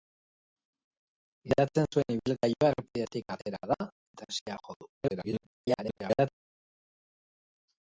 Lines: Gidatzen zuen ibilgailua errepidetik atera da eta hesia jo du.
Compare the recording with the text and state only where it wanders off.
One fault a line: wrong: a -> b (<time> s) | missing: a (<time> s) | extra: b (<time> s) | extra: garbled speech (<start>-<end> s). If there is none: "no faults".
extra: garbled speech (5.0-6.3 s)